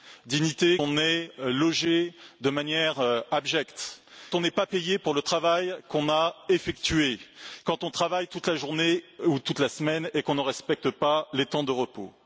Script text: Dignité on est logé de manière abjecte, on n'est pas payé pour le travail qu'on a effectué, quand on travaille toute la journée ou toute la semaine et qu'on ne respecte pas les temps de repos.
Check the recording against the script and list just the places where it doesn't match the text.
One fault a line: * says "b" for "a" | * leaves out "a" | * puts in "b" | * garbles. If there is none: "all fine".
all fine